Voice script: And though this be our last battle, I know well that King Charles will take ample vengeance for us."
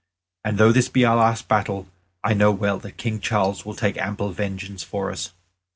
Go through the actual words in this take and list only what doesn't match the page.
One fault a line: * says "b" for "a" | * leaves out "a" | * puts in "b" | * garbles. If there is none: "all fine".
all fine